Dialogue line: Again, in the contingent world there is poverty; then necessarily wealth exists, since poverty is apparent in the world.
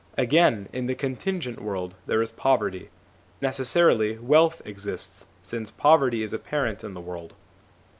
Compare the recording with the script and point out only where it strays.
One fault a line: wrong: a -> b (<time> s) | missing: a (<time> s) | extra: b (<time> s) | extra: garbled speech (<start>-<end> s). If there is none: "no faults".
missing: then (2.9 s)